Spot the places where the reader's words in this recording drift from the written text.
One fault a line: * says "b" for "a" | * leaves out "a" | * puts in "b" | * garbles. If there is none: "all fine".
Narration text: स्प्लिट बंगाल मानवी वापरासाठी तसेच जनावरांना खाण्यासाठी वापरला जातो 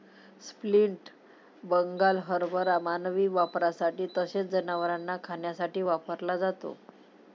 * puts in "हरभरा"